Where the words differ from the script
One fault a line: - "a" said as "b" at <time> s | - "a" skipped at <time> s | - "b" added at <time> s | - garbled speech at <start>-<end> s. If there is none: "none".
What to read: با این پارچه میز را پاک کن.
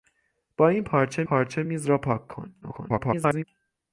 - "پارچه" added at 1.2 s
- garbled speech at 2.6-3.4 s